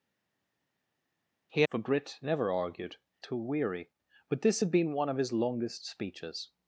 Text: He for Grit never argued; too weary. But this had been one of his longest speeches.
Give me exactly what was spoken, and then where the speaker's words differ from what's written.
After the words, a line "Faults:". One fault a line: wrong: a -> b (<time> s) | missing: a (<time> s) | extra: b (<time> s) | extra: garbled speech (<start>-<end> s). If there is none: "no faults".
He for Grit never argued; too weary. But this had been one of his longest speeches.
Faults:
no faults